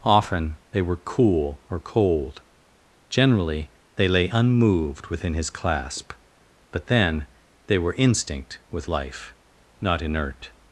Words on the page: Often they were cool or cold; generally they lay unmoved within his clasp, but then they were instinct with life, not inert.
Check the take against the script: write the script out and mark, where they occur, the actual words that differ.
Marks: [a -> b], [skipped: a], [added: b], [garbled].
Often they were cool or cold; generally they lay unmoved within his clasp, but then they were instinct with life, not inert.